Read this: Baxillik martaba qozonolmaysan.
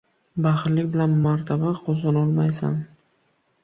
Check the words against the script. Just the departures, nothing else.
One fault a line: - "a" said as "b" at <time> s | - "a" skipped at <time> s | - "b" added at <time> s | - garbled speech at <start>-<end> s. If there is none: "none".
- "bilan" added at 0.9 s